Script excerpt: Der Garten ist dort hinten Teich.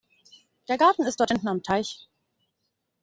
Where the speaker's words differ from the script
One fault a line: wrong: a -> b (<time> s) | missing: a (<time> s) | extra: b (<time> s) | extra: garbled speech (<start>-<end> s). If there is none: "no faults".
extra: am (1.5 s)